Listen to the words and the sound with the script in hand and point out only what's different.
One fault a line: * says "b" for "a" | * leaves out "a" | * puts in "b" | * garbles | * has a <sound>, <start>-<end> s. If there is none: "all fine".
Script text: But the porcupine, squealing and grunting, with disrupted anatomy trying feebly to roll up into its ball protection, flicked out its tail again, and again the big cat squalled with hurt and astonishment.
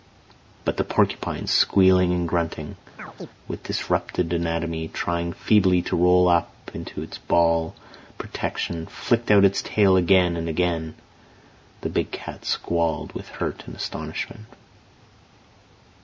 * has a chirp, 3.0-3.3 s